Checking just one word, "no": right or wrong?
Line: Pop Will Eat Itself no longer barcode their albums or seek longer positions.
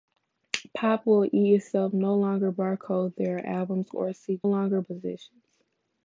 right